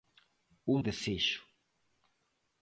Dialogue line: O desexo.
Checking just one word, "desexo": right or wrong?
right